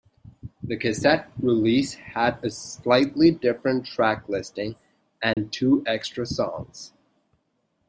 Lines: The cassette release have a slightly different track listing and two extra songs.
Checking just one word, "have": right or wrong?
wrong